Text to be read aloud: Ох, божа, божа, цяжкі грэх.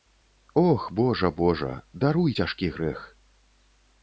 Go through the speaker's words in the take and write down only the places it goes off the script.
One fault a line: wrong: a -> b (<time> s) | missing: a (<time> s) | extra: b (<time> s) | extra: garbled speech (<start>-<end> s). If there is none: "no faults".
extra: даруй (1.9 s)